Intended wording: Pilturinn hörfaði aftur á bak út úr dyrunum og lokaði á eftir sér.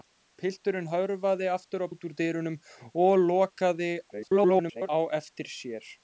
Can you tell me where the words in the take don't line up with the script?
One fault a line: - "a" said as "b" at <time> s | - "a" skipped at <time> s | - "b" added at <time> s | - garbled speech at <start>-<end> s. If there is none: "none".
- "bak" skipped at 1.9 s
- garbled speech at 4.1-4.9 s